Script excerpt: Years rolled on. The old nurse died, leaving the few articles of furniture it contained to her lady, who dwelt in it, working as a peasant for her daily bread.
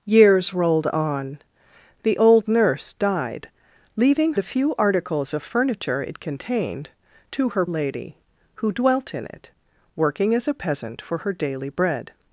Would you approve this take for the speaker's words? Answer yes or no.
yes